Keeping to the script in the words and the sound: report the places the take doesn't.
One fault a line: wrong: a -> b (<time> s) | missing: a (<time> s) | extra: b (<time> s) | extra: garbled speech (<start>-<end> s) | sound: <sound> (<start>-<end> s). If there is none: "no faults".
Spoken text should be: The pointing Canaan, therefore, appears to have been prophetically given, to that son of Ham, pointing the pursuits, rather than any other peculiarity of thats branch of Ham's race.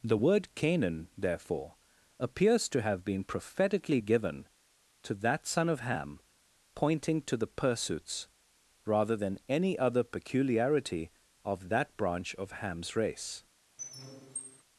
wrong: pointing -> word (0.2 s)
extra: to (7.2 s)
wrong: thats -> that (11.7 s)
sound: squeak (13.8-14.6 s)